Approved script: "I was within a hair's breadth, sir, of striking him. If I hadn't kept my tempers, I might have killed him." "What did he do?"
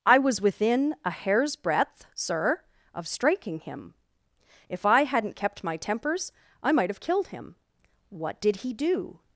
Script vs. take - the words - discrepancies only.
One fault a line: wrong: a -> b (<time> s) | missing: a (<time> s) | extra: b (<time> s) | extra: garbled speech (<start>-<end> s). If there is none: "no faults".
no faults